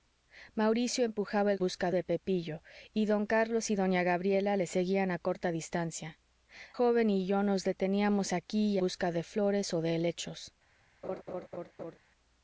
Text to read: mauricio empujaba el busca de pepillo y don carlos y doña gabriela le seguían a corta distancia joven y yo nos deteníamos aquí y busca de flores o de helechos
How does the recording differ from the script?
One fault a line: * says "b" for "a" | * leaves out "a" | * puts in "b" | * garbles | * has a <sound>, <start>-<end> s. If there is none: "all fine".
* has a laugh, 11.0-12.0 s